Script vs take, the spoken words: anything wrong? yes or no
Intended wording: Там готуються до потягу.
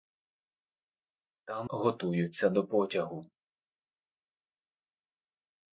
no